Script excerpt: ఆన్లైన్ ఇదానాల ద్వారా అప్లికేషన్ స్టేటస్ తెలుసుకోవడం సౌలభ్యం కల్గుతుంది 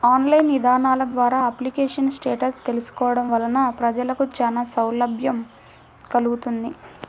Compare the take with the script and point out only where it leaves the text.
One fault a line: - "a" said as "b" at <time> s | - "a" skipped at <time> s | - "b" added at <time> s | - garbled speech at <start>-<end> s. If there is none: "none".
- "వలన ప్రజలకు చానా" added at 3.3 s